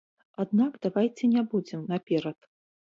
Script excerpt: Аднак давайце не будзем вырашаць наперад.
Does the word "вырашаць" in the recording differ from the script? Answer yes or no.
yes